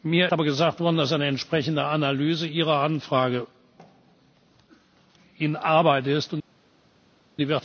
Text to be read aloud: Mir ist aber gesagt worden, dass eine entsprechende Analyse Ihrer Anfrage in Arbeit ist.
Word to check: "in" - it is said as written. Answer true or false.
true